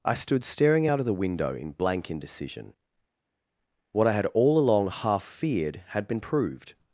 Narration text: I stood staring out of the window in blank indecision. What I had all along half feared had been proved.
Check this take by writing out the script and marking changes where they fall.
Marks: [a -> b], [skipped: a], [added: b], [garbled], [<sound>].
I stood staring out of the window in blank indecision. What I had all along half feared had been proved.